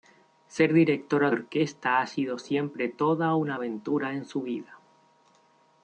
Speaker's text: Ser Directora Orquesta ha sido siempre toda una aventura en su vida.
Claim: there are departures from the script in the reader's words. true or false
false